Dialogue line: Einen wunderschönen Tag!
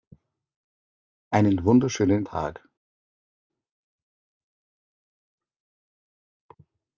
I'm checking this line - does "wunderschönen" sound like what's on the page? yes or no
yes